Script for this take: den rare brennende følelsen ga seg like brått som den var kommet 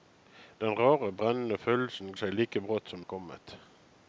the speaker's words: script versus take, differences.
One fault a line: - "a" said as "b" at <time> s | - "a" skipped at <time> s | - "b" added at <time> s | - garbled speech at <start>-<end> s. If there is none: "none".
- "ga" skipped at 2.1 s
- "den" skipped at 3.0 s